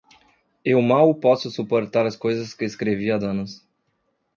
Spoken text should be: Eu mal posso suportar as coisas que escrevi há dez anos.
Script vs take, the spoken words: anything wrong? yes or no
yes